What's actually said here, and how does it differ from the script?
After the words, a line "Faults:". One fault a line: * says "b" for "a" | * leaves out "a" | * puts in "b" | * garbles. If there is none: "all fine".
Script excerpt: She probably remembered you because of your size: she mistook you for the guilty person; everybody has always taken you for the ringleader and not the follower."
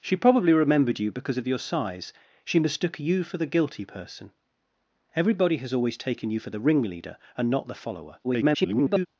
She probably remembered you because of your size: she mistook you for the guilty person; everybody has always taken you for the ringleader and not the follower." [garbled]
Faults:
* garbles